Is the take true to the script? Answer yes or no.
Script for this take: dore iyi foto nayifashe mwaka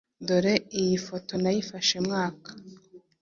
yes